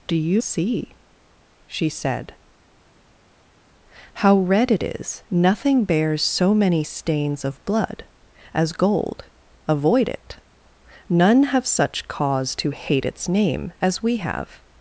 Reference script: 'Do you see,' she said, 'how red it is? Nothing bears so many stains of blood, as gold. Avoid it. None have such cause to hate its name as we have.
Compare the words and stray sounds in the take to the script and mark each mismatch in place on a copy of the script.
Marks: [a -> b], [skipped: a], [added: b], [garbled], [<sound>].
'Do you see,' she said, 'how red it is? Nothing bears so many stains of blood, as gold. Avoid it. None have such cause to hate its name as we have.